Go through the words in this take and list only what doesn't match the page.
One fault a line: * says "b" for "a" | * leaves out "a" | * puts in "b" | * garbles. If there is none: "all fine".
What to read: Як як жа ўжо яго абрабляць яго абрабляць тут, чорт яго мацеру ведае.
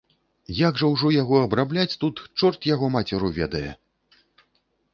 * leaves out "як"
* leaves out "яго абрабляць"